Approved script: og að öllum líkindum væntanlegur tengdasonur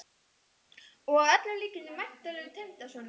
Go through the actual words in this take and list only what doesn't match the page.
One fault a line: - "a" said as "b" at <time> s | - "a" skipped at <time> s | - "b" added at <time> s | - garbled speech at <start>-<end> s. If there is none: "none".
none